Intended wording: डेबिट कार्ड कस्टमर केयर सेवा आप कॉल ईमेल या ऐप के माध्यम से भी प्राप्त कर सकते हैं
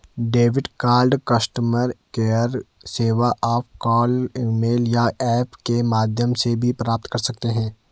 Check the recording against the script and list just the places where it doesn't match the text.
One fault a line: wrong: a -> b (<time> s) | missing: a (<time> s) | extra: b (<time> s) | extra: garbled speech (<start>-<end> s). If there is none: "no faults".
no faults